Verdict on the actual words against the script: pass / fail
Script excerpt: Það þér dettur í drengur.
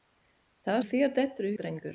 pass